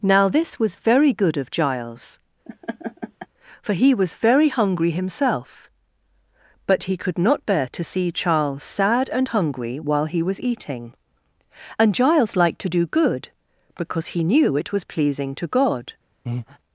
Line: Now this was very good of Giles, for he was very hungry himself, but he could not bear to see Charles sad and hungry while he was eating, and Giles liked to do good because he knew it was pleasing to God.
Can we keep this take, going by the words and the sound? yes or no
no